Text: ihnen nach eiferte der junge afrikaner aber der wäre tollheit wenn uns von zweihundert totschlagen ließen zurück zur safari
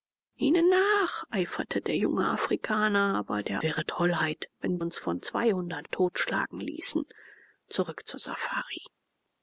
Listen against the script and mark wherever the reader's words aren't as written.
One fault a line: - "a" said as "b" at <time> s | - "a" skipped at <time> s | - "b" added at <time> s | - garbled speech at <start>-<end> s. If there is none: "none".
none